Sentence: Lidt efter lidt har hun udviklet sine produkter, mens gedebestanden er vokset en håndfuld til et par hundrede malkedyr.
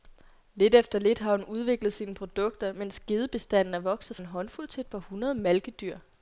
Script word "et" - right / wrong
right